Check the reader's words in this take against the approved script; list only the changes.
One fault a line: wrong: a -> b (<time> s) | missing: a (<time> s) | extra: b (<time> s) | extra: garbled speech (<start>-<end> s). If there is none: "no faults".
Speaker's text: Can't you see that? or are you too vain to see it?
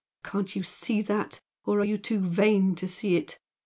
no faults